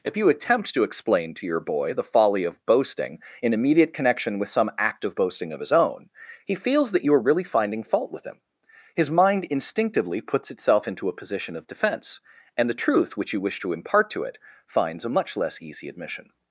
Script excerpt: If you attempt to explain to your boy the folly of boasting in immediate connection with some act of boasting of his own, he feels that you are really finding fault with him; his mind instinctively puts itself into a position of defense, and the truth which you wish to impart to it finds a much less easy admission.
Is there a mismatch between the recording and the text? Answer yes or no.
no